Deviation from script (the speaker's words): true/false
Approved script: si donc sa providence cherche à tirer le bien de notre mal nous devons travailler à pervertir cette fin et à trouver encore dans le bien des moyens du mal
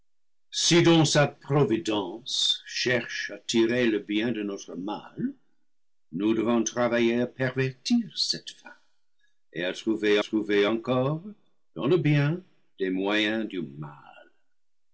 true